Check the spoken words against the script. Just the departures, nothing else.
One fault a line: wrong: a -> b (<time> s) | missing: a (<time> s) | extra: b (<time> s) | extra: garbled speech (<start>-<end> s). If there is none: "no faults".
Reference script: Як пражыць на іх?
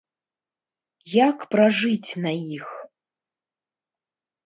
no faults